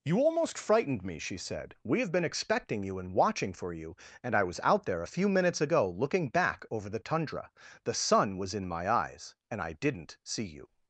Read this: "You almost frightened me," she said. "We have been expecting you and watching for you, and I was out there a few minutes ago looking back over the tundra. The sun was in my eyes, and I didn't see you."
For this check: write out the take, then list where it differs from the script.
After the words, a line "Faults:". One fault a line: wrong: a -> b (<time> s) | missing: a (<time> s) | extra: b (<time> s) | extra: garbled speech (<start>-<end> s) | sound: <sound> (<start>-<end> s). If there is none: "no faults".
"You almost frightened me," she said. "We have been expecting you and watching for you, and I was out there a few minutes ago looking back over the tundra. The sun was in my eyes, and I didn't see you."
Faults:
no faults